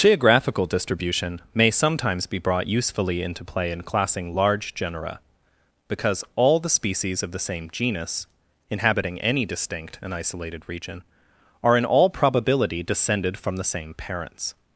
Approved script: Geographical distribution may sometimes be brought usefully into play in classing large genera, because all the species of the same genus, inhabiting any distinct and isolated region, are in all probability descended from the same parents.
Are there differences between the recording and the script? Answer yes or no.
no